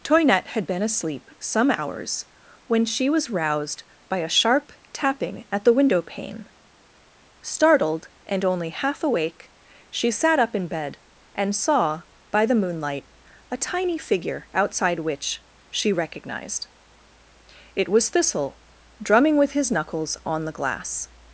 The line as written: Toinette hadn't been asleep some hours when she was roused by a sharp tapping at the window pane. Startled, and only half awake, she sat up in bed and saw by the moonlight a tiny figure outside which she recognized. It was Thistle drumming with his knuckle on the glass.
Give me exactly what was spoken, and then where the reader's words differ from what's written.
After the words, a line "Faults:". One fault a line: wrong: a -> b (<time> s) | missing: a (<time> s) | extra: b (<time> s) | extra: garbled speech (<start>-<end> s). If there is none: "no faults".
Toinette had been asleep some hours when she was roused by a sharp tapping at the window pane. Startled, and only half awake, she sat up in bed and saw by the moonlight a tiny figure outside which she recognized. It was Thistle drumming with his knuckles on the glass.
Faults:
wrong: hadn't -> had (0.5 s)
wrong: knuckle -> knuckles (19.7 s)